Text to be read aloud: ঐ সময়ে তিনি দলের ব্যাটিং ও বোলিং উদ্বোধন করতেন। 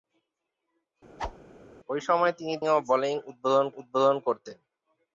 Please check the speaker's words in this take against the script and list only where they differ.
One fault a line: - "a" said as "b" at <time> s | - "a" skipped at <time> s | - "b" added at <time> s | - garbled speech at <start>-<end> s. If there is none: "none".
- "দলের ব্যাটিং" skipped at 2.5 s
- "উদ্বোধন" added at 3.8 s